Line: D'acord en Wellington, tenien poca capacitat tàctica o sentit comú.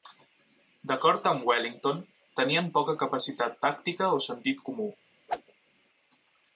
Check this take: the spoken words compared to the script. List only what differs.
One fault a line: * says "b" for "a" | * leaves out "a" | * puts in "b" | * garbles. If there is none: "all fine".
* says "amb" for "en"